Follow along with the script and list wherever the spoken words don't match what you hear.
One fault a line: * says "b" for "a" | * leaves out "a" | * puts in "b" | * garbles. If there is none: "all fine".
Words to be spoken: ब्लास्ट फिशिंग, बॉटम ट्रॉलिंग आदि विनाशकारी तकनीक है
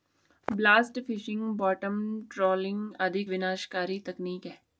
all fine